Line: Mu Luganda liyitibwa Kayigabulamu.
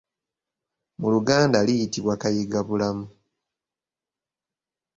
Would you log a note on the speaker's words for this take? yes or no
no